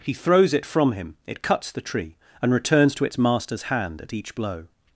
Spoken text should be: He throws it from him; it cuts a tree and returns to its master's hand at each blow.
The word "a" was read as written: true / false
false